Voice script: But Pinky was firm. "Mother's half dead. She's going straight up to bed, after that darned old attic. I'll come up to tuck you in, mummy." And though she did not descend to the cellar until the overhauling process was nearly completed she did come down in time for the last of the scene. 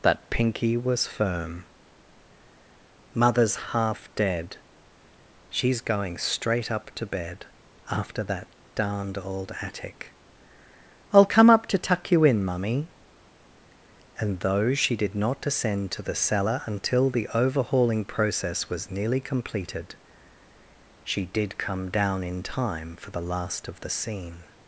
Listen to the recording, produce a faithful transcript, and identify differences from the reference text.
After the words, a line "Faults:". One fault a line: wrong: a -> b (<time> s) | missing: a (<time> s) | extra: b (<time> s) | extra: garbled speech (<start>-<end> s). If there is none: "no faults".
That Pinky was firm. "Mother's half dead. She's going straight up to bed, after that darned old attic. I'll come up to tuck you in, mummy." And though she did not descend to the cellar until the overhauling process was nearly completed she did come down in time for the last of the scene.
Faults:
wrong: But -> That (0.0 s)